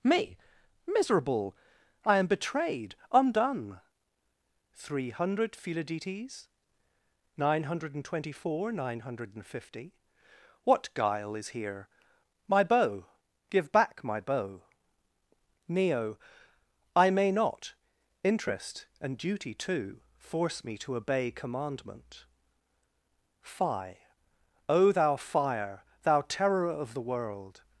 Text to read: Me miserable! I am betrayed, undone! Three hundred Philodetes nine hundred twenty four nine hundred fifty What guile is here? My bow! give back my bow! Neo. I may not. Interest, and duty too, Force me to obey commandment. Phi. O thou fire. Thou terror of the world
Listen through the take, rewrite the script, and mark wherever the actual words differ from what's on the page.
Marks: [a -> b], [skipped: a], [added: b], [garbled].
Me miserable! I am betrayed, undone! Three hundred Philodetes nine hundred [added: and] twenty four nine hundred [added: and] fifty What guile is here? My bow! give back my bow! Neo. I may not. Interest, and duty too, Force me to obey commandment. Phi. O thou fire. Thou terror of the world